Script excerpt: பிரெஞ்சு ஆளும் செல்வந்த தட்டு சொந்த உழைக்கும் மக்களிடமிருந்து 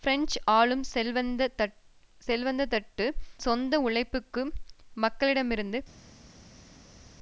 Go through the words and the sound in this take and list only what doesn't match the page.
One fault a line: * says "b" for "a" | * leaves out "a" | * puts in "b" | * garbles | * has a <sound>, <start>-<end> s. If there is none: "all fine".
all fine